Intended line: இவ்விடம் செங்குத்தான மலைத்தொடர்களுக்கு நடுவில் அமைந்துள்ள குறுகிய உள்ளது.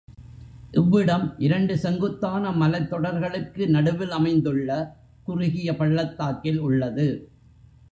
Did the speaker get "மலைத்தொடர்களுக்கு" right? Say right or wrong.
right